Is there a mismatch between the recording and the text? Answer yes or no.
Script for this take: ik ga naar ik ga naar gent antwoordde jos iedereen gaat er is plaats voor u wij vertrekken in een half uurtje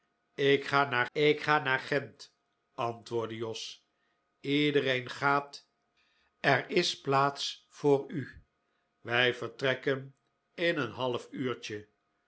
no